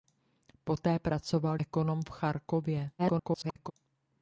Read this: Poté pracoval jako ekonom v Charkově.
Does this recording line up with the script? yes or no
no